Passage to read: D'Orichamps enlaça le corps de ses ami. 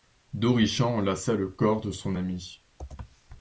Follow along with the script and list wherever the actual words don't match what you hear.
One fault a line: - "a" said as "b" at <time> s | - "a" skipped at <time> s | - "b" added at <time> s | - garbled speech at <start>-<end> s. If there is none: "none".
- "ses" said as "son" at 1.9 s